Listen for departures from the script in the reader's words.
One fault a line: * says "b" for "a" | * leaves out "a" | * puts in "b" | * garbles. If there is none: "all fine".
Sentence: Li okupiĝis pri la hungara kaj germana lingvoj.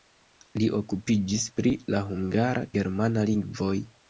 * leaves out "kaj"